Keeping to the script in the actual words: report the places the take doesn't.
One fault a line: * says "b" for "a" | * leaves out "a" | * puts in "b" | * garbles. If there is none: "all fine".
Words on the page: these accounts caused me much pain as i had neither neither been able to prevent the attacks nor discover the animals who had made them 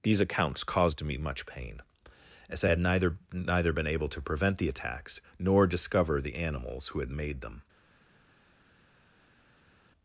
all fine